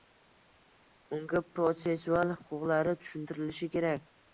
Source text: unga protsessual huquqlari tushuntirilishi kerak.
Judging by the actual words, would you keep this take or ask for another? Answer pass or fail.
pass